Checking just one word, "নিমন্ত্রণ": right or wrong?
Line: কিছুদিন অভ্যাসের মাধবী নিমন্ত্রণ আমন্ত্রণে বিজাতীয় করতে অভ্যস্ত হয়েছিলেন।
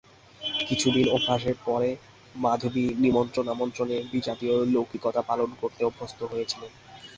right